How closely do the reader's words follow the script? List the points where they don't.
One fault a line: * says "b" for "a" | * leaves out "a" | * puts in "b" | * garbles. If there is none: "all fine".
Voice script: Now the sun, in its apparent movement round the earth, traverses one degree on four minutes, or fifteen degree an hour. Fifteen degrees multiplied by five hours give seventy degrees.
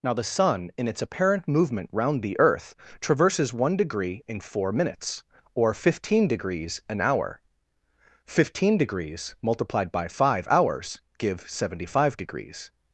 * says "in" for "on"
* says "degrees" for "degree"
* puts in "five"